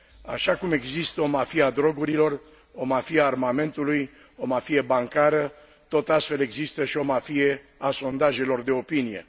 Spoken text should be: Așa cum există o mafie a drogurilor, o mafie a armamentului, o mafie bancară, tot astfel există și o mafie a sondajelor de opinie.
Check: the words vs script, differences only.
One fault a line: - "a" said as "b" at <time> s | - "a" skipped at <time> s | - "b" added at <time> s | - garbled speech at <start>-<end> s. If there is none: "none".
none